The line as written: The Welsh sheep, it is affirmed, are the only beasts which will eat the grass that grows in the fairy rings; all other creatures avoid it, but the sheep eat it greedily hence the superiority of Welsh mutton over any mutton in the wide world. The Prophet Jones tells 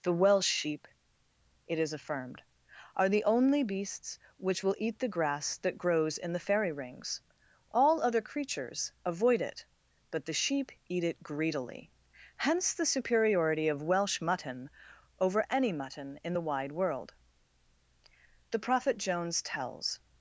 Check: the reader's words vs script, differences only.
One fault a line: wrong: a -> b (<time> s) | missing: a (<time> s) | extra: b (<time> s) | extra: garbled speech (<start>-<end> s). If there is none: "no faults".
no faults